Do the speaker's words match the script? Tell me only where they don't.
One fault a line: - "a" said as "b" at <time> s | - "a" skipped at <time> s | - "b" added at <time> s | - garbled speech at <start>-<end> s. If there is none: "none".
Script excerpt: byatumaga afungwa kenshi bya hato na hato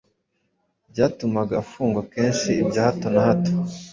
none